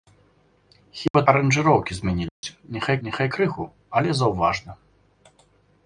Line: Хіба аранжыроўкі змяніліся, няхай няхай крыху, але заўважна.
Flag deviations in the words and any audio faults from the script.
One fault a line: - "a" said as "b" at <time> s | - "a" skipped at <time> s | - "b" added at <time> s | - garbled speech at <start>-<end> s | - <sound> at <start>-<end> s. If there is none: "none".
- dropout at 1.1-1.1 s
- dropout at 2.3-2.4 s